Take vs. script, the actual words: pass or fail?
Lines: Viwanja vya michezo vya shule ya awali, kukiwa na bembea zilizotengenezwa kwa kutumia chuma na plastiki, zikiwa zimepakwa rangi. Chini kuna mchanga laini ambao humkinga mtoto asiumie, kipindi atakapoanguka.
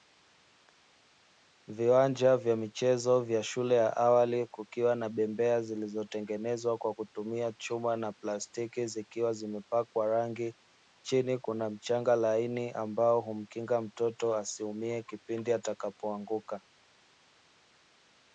pass